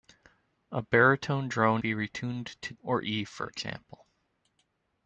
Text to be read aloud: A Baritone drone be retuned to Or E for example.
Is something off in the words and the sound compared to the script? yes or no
no